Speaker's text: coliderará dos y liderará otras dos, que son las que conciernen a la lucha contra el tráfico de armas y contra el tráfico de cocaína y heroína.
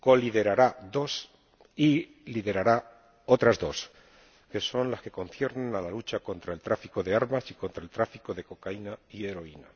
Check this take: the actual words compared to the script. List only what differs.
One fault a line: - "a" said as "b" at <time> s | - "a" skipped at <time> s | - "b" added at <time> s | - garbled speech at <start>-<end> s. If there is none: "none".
none